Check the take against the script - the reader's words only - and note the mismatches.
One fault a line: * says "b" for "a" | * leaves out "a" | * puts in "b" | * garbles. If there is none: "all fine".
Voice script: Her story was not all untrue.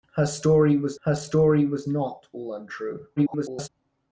* puts in "her story was"
* garbles